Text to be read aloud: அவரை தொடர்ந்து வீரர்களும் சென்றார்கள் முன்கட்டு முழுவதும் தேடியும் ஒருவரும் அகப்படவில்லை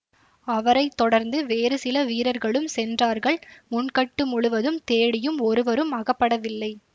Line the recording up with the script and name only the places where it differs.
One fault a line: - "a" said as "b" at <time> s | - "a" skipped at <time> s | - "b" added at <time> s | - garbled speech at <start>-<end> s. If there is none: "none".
- "வேறு சில" added at 1.4 s